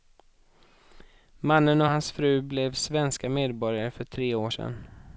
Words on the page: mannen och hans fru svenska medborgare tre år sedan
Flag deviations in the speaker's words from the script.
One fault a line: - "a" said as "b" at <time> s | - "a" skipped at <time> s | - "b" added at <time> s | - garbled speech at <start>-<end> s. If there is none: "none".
- "blev" added at 2.4 s
- "för" added at 3.9 s